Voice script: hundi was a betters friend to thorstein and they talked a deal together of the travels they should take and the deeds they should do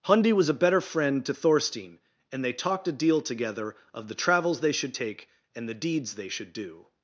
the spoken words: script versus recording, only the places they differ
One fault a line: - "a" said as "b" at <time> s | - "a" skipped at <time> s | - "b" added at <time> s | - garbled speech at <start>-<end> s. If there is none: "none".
- "betters" said as "better" at 0.6 s